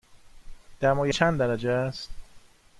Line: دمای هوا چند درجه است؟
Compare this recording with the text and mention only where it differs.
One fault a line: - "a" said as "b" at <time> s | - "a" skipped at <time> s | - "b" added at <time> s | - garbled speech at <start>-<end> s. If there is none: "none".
- "هوا" skipped at 1.1 s